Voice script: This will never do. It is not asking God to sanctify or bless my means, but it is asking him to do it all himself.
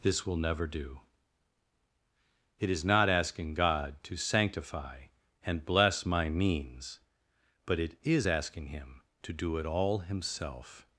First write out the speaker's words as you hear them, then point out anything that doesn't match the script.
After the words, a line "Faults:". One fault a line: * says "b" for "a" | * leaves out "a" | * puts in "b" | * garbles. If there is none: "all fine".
This will never do. It is not asking God to sanctify and bless my means, but it is asking him to do it all himself.
Faults:
* says "and" for "or"